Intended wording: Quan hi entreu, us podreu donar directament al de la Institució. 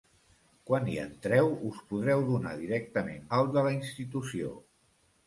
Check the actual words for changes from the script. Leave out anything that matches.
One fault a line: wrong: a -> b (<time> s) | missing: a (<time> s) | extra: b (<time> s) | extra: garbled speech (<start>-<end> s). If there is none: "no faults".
no faults